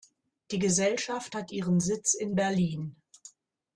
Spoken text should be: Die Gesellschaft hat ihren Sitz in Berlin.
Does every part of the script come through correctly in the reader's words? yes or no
yes